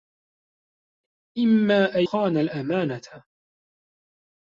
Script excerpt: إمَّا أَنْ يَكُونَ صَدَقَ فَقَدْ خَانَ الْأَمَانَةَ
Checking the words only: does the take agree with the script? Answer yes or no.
no